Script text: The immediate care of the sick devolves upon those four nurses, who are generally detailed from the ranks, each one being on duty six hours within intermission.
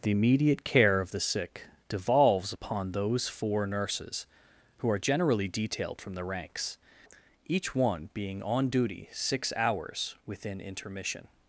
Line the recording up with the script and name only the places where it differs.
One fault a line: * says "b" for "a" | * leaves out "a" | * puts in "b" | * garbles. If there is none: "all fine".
all fine